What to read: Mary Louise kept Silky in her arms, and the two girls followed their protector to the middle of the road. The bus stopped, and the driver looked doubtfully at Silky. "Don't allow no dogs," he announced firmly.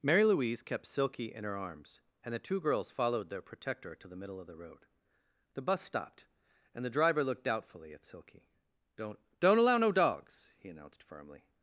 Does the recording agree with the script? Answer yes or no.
no